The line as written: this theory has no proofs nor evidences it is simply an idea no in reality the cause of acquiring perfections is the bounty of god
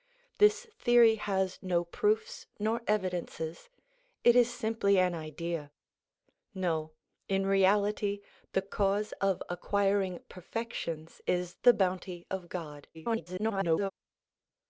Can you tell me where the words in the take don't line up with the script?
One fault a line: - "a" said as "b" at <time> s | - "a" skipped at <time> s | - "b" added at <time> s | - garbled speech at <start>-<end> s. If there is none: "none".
- garbled speech at 12.9-13.9 s